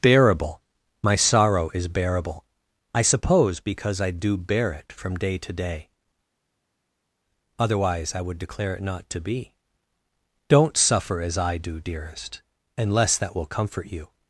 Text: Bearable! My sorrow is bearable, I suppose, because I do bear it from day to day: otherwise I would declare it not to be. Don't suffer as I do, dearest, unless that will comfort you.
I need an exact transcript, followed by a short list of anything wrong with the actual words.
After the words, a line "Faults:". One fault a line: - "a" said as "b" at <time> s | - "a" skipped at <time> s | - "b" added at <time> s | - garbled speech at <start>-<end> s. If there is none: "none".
Bearable! My sorrow is bearable, I suppose, because I do bear it from day to day: otherwise I would declare it not to be. Don't suffer as I do, dearest, unless that will comfort you.
Faults:
none